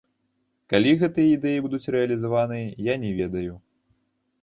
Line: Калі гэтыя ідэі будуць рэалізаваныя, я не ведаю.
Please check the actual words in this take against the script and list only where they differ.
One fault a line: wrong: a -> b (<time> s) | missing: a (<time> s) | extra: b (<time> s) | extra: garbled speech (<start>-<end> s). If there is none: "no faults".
no faults